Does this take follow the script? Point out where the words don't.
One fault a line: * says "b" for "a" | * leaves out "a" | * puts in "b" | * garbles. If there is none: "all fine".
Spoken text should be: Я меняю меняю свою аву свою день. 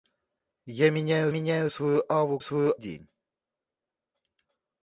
all fine